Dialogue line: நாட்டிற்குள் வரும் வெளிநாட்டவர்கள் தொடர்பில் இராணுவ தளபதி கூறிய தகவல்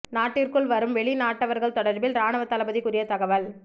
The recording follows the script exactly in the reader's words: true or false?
true